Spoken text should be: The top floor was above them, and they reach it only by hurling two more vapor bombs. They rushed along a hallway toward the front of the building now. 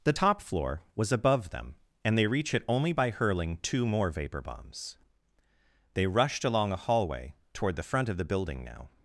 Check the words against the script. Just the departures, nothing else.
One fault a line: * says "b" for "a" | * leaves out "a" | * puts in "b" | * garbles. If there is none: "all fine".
all fine